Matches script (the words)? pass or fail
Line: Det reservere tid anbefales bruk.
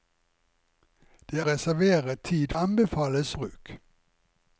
pass